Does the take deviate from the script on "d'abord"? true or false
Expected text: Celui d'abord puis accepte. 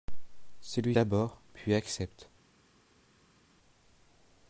false